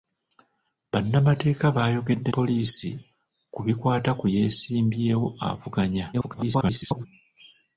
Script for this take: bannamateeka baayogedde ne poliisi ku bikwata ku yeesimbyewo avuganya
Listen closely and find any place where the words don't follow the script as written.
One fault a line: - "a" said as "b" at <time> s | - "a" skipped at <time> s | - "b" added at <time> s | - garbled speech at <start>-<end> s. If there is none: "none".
- "ne" skipped at 2.3 s
- garbled speech at 6.1-7.1 s